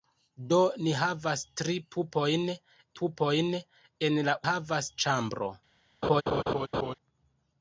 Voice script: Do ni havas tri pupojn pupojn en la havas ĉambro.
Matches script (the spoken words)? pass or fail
pass